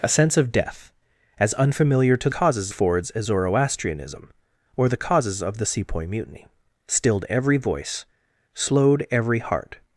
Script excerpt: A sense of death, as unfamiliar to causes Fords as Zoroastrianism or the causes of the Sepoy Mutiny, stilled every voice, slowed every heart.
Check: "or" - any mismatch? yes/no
no